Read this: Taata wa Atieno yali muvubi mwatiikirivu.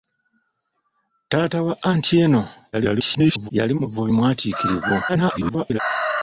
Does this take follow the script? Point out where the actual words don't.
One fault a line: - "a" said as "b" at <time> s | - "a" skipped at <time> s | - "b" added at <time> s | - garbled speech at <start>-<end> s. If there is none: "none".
- garbled speech at 2.7-3.5 s
- garbled speech at 5.1-5.8 s